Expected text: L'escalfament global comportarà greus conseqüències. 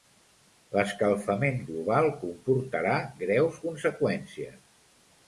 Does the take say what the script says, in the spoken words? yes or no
yes